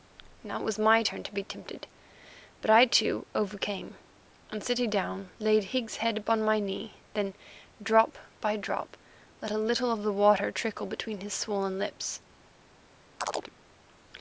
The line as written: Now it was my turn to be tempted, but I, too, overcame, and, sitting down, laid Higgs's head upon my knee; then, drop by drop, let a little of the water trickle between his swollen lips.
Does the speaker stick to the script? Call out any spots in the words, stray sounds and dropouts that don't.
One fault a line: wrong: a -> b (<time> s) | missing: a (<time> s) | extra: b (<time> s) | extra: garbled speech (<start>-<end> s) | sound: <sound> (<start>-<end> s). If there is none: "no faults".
sound: chirp (13.2-13.5 s)